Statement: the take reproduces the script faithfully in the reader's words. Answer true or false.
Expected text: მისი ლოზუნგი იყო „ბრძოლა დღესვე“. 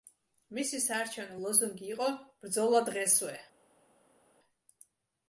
false